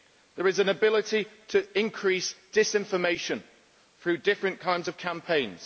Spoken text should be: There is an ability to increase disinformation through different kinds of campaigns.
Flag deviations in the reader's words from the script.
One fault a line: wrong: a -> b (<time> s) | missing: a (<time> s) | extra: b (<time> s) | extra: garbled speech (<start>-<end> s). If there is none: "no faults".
no faults